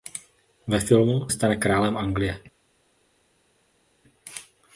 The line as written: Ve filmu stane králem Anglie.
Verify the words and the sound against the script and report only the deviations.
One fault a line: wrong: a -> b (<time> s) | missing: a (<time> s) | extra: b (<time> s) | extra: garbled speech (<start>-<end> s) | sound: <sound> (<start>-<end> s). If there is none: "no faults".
no faults